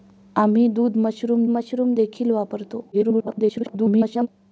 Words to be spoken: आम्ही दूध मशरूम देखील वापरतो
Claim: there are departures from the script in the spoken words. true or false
true